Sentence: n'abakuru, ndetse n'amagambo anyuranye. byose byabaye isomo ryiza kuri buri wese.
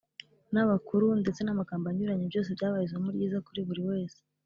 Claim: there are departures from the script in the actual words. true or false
false